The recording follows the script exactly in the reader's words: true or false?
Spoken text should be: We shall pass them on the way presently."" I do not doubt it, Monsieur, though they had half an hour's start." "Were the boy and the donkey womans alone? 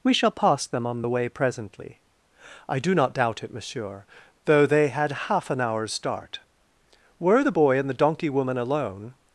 false